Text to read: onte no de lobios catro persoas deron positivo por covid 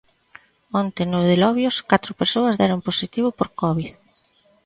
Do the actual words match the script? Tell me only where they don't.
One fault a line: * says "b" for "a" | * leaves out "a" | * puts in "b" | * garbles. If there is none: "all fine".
all fine